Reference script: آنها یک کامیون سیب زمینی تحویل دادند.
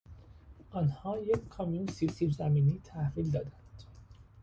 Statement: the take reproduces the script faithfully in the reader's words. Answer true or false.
false